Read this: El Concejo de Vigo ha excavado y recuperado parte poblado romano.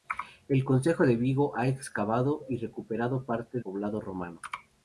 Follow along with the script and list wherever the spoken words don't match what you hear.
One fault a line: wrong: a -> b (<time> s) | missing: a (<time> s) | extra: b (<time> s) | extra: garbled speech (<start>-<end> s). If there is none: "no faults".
no faults